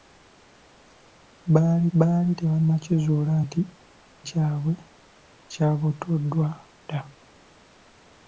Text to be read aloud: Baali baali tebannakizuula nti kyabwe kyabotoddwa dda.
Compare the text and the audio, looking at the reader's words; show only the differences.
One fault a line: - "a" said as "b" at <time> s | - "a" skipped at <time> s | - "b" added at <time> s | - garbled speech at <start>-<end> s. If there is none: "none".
none